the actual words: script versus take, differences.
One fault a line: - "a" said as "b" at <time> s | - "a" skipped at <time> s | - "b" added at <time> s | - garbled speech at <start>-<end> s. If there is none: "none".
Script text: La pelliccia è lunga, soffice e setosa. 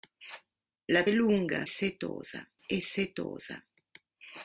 - "pelliccia" skipped at 1.1 s
- "soffice" said as "setosa" at 1.7 s